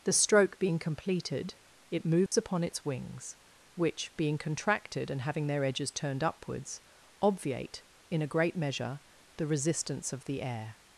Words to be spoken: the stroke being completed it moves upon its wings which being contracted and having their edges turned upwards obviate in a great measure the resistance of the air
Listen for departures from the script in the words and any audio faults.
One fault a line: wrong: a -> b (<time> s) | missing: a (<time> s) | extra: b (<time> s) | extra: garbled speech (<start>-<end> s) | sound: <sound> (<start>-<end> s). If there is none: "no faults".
sound: dropout (2.3-2.3 s)